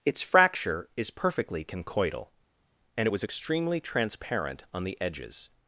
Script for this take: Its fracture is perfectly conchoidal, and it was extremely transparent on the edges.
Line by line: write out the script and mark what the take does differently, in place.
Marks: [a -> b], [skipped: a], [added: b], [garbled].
Its fracture is perfectly conchoidal, and it was extremely transparent on the edges.